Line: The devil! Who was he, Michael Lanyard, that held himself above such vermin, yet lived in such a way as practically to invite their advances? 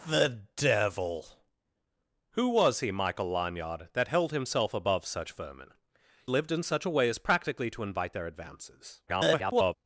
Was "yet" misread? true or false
true